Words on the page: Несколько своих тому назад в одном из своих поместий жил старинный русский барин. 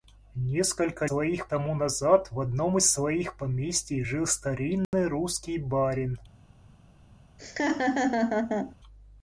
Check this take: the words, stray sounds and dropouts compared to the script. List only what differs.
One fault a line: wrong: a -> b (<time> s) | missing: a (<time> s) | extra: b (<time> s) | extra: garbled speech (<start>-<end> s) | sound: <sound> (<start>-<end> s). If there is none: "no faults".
sound: dropout (4.8-4.9 s)
sound: laugh (7.4-8.8 s)